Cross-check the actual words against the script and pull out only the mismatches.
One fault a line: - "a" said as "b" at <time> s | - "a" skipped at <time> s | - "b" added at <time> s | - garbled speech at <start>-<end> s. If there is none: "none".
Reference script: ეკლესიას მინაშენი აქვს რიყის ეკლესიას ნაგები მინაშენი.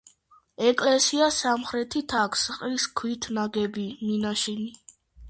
- "მინაშენი" said as "სამხრეთით" at 1.4 s
- "ეკლესიას" said as "ქვით" at 3.0 s